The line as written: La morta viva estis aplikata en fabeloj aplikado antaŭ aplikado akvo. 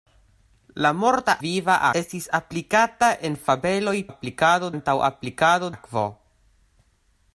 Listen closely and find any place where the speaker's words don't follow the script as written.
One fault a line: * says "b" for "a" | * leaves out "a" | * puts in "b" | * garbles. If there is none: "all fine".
all fine